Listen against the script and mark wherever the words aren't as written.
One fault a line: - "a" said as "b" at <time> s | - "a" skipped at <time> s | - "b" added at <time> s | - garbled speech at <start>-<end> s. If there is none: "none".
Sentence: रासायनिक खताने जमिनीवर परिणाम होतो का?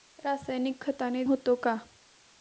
- "जमिनीवर परिणाम" skipped at 1.2 s